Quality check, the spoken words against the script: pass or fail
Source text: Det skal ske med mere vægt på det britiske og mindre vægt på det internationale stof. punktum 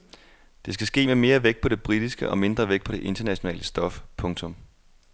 pass